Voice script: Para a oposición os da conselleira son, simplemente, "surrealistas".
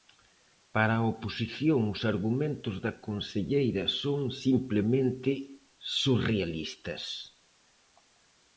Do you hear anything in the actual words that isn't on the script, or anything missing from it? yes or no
yes